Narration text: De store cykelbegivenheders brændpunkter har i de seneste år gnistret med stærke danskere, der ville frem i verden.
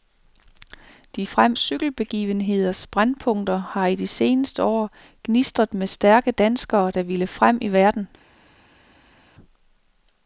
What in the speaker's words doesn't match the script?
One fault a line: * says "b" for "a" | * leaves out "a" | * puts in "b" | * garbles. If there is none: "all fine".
* says "frem" for "store"